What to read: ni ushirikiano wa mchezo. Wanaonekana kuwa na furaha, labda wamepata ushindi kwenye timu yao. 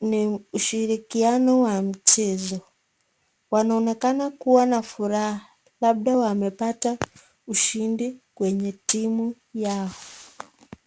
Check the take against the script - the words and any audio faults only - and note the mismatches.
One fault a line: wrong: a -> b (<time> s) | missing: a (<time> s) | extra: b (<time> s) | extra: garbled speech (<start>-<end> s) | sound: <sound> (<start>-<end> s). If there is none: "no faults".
no faults